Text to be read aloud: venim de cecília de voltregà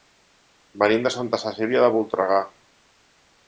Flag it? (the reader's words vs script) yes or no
yes